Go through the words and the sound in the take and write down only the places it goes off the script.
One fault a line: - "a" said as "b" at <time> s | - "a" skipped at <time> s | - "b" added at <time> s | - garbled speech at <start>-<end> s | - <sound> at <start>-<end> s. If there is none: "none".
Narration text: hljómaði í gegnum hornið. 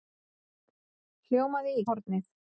- "gegnum" skipped at 1.9 s